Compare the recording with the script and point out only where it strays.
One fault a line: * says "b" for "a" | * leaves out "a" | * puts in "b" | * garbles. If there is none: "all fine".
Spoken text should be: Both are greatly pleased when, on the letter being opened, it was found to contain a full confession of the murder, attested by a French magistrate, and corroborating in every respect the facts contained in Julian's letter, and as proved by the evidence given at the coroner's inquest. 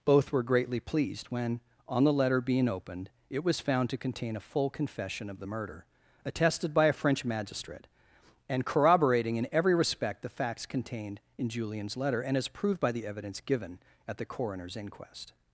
* says "were" for "are"